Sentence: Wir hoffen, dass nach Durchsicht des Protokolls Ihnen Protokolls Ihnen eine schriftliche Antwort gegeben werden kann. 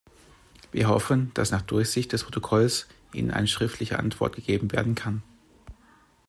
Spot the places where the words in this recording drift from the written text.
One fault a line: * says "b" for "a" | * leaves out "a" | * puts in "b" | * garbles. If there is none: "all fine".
* leaves out "Protokolls Ihnen"